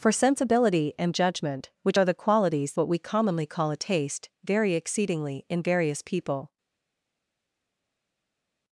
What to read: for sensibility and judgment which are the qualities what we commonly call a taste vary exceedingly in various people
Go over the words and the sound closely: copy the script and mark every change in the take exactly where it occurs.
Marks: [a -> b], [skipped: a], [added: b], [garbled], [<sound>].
for sensibility and judgment which are the qualities what we commonly call a taste vary exceedingly in various people